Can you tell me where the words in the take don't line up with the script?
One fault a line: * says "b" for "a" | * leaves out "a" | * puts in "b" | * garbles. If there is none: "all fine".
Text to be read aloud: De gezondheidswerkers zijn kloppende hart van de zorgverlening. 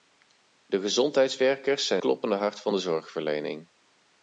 all fine